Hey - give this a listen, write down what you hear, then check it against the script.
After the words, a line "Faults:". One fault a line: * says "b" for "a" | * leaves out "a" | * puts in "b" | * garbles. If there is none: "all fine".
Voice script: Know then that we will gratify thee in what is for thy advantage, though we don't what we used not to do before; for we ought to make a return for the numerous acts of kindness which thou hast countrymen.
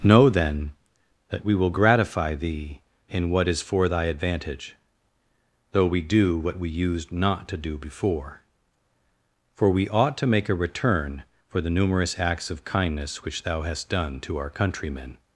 Know then that we will gratify thee in what is for thy advantage, though we do what we used not to do before; for we ought to make a return for the numerous acts of kindness which thou hast done to our countrymen.
Faults:
* says "do" for "don't"
* puts in "done to our"